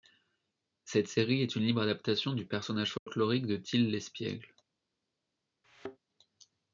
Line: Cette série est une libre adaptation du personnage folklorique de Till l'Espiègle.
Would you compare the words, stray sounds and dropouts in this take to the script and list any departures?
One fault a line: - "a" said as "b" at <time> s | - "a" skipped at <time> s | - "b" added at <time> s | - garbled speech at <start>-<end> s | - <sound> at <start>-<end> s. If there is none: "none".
- dropout at 3.0-3.1 s
- thud at 5.6-6.0 s